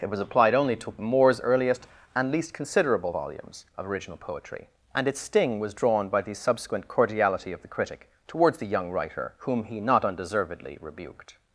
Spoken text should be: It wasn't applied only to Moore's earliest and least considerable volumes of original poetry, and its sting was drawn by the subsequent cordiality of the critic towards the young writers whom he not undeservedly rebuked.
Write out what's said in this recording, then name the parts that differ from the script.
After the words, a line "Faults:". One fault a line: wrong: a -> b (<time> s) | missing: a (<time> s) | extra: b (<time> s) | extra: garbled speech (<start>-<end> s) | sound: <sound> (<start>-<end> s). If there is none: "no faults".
It was applied only to Moore's earliest and least considerable volumes of original poetry, and its sting was drawn by the subsequent cordiality of the critic towards the young writer whom he not undeservedly rebuked.
Faults:
wrong: wasn't -> was (0.1 s)
wrong: writers -> writer (8.9 s)